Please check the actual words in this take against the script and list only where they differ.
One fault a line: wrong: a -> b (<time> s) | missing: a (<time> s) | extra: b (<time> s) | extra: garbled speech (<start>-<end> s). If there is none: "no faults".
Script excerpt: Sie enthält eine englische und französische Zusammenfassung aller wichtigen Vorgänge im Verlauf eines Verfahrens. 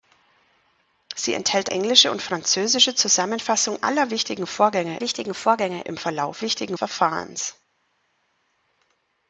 missing: eine (1.7 s)
extra: wichtigen Vorgänge (5.0 s)
wrong: eines -> wichtigen (6.4 s)